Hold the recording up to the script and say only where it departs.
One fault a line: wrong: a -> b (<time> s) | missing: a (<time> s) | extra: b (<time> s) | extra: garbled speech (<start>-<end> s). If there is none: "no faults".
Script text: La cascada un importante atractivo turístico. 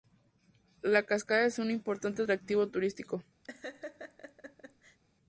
extra: es (1.4 s)